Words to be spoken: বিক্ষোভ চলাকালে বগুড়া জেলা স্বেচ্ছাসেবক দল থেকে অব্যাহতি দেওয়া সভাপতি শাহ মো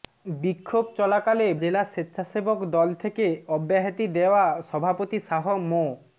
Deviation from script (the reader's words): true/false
true